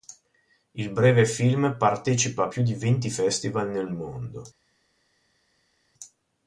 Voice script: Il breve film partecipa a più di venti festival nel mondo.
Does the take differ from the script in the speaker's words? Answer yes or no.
no